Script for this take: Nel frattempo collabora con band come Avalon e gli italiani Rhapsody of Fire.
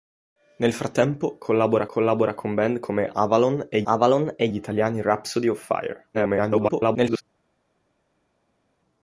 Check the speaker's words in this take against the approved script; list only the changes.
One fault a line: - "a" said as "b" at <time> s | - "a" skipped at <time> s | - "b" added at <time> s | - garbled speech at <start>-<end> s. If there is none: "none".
- "collabora" added at 1.8 s
- "Avalon e" added at 3.8 s
- garbled speech at 6.1-7.2 s